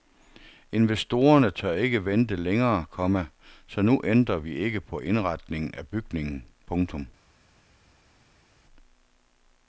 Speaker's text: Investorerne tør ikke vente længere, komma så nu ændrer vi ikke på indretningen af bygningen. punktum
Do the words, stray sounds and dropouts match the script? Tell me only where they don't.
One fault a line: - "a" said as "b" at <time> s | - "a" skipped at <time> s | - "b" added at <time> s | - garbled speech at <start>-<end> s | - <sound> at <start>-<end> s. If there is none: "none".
none